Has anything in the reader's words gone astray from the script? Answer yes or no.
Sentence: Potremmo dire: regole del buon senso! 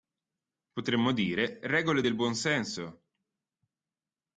no